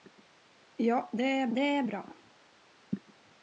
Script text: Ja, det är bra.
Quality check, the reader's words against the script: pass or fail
fail